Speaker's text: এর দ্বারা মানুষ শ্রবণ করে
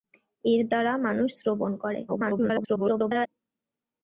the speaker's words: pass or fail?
fail